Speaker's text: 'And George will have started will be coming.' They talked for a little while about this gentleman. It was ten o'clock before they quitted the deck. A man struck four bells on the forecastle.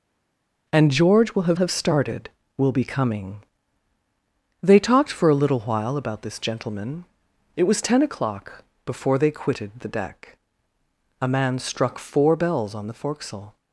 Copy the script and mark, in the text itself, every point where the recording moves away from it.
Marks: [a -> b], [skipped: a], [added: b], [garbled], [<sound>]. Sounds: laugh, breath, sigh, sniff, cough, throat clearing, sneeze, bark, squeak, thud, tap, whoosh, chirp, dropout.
'And George will have [added: have] started will be coming.' They talked for a little while about this gentleman. It was ten o'clock before they quitted the deck. A man struck four bells on the forecastle.